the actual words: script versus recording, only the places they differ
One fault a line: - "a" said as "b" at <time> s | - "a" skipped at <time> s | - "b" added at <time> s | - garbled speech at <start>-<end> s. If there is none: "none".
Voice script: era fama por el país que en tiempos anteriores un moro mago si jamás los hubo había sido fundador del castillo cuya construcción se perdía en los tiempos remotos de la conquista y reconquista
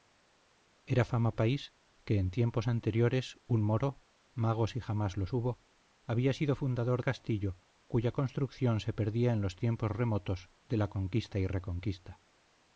- "por el" skipped at 1.4 s
- "del" skipped at 7.0 s